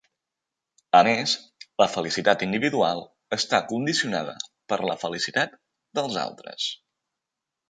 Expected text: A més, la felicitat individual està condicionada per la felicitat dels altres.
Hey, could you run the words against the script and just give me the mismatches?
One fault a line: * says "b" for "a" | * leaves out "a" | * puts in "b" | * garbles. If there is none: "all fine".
all fine